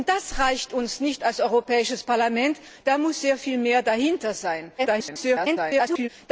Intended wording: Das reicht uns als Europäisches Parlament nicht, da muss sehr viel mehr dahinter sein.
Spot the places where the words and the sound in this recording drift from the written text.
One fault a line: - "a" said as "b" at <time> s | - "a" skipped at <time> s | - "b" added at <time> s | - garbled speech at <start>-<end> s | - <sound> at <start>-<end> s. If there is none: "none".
- garbled speech at 4.8-6.1 s